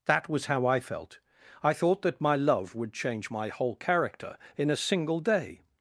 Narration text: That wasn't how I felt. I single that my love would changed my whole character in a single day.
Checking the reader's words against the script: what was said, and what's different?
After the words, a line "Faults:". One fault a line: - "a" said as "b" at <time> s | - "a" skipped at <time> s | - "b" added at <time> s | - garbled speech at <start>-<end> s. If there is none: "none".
That was how I felt. I thought that my love would change my whole character in a single day.
Faults:
- "wasn't" said as "was" at 0.3 s
- "single" said as "thought" at 1.7 s
- "changed" said as "change" at 2.9 s